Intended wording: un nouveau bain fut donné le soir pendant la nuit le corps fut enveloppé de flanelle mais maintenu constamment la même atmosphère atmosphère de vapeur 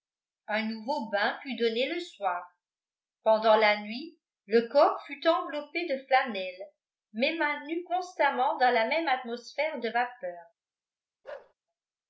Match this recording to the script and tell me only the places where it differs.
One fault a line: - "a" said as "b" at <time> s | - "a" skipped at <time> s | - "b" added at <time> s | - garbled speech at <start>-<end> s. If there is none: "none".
- "dans" added at 8.6 s
- "atmosphère" skipped at 9.8 s